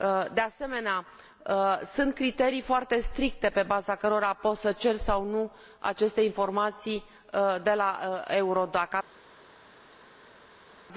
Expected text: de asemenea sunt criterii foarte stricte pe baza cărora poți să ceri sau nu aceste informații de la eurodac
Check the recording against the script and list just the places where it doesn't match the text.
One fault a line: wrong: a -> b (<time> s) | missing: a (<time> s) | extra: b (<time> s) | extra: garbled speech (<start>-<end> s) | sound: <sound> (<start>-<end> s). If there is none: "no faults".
no faults